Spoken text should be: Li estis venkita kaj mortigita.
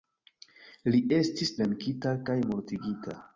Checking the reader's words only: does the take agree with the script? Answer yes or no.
yes